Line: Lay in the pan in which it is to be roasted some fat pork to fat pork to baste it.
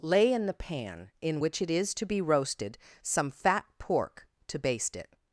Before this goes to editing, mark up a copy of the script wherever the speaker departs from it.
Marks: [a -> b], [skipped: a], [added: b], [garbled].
Lay in the pan in which it is to be roasted some fat pork to [skipped: fat pork to] baste it.